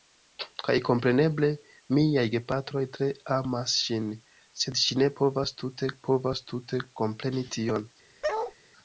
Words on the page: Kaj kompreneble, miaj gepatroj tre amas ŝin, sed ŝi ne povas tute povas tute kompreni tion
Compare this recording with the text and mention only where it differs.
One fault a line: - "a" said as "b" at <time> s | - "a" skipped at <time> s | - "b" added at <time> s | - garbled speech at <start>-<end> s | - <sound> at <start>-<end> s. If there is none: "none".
- bark at 8.2-8.5 s